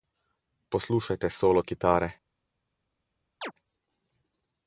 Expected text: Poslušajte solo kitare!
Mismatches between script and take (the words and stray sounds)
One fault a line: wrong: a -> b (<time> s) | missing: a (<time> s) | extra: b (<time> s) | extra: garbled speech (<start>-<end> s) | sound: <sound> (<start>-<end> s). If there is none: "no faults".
sound: chirp (3.4-3.5 s)